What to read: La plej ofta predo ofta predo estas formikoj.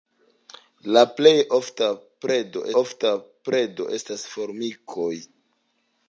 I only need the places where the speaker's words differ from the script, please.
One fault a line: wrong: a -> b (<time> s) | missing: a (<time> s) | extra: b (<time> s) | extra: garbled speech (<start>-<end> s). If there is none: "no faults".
no faults